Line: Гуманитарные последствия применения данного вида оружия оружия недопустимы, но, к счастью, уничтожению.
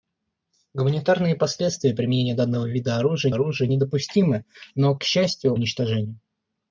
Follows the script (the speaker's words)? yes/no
yes